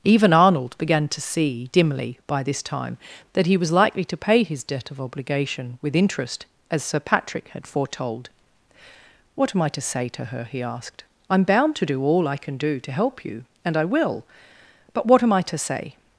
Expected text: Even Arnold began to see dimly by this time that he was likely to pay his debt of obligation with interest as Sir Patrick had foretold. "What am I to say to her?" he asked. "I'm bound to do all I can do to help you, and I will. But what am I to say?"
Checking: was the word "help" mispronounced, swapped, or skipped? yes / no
no